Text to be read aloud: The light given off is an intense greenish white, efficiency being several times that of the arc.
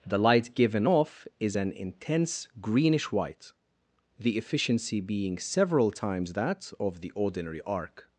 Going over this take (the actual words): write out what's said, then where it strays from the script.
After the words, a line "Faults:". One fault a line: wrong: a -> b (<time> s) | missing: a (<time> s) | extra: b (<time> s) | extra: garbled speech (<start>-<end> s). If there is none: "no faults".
The light given off is an intense greenish white, the efficiency being several times that of the ordinary arc.
Faults:
extra: the (4.2 s)
extra: ordinary (7.1 s)